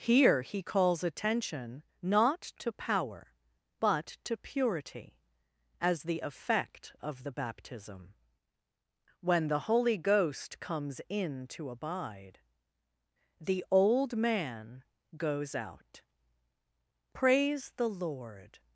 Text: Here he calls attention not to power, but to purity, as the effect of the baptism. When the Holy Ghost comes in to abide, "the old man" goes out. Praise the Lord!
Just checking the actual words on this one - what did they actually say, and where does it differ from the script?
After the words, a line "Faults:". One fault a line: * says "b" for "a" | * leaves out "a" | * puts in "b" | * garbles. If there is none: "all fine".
Here he calls attention not to power, but to purity, as the effect of the baptism. When the Holy Ghost comes in to abide, "the old man" goes out. Praise the Lord!
Faults:
all fine